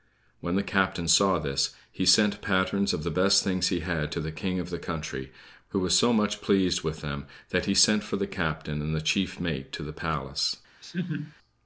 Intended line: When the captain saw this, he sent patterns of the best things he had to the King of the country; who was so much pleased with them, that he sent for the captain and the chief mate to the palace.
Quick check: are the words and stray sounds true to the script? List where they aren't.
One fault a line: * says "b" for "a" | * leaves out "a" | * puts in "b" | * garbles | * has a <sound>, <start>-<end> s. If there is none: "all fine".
* has a laugh, 10.8-11.4 s